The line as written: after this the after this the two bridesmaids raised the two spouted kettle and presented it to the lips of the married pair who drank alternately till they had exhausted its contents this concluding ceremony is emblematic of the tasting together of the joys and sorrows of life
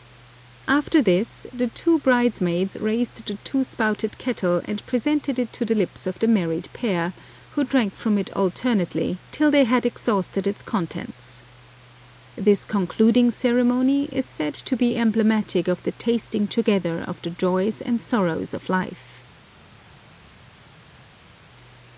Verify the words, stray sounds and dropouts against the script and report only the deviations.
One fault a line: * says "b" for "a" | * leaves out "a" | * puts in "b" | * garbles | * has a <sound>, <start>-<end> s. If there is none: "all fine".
* leaves out "after this the"
* puts in "from it"
* puts in "said to be"